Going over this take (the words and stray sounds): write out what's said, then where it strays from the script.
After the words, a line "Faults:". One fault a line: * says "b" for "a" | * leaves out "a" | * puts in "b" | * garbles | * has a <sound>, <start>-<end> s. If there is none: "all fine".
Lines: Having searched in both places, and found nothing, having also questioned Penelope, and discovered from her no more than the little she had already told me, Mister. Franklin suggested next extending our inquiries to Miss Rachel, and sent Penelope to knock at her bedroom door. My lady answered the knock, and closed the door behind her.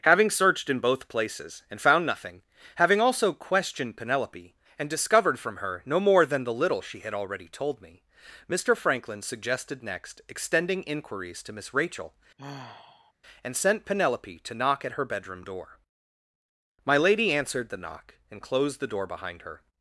Having searched in both places, and found nothing, having also questioned Penelope, and discovered from her no more than the little she had already told me, Mister. Franklin suggested next extending inquiries to Miss Rachel, and sent Penelope to knock at her bedroom door. My lady answered the knock, and closed the door behind her.
Faults:
* leaves out "our"
* has a sigh, 12.4-13.1 s